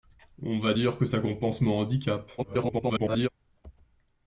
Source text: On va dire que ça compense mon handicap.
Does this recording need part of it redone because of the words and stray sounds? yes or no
yes